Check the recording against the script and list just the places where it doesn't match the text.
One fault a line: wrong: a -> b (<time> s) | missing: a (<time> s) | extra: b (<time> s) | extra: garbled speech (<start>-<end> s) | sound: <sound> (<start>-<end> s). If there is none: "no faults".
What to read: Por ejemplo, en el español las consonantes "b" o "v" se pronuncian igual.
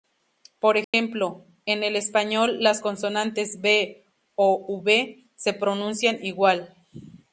sound: dropout (0.8-0.9 s)